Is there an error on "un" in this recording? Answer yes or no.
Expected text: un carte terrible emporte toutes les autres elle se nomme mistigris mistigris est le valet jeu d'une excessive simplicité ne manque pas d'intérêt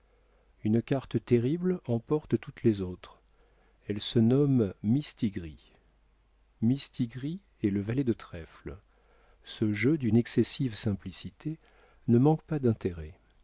yes